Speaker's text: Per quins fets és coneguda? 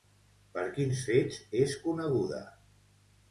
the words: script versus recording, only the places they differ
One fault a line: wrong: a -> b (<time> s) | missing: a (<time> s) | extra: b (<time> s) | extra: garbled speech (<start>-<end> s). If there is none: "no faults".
no faults